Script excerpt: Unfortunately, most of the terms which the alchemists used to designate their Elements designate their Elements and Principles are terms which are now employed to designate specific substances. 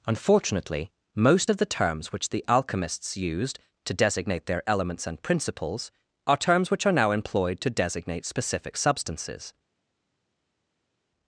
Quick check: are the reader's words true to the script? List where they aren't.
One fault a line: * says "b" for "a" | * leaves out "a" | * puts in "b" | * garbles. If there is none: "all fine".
* leaves out "designate their Elements"